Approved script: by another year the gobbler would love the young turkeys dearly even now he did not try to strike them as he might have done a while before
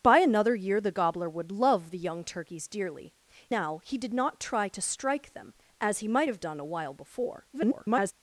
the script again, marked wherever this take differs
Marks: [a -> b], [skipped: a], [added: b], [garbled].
by another year the gobbler would love the young turkeys dearly [skipped: even] now he did not try to strike them as he might have done a while before [garbled]